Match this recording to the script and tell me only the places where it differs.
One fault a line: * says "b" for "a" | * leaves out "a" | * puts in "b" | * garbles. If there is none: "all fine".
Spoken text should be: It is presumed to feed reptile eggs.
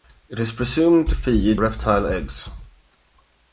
all fine